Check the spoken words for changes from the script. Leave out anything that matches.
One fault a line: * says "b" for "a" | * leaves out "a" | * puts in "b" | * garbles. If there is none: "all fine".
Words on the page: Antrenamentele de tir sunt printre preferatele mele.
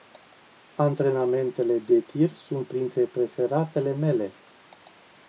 all fine